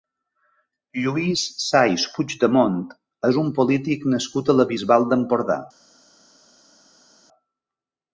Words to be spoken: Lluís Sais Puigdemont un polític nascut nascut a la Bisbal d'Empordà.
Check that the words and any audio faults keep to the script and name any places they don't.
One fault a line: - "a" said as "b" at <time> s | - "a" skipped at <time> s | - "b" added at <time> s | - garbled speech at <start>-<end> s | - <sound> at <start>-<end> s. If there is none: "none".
- "és" added at 3.3 s
- "nascut" skipped at 4.5 s